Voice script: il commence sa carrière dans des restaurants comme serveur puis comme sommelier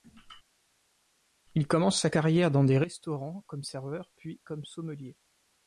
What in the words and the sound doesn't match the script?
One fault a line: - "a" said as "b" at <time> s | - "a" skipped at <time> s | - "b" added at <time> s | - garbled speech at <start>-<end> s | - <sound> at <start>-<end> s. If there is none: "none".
none